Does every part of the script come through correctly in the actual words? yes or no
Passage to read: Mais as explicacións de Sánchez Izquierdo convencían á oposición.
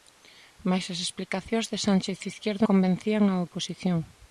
yes